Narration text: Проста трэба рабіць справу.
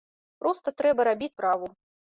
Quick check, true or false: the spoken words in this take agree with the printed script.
true